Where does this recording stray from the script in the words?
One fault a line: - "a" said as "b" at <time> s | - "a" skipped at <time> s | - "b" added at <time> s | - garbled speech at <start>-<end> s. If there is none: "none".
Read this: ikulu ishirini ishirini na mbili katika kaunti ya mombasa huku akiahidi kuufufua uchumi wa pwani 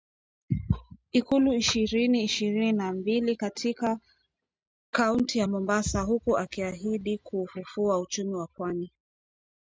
none